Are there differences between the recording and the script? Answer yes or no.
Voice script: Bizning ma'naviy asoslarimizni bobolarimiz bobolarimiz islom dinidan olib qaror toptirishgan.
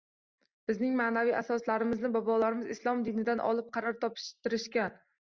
yes